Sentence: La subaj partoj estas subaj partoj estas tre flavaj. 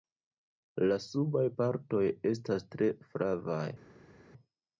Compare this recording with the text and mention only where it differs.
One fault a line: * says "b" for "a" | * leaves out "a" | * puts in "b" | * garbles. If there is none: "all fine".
* leaves out "subaj partoj estas"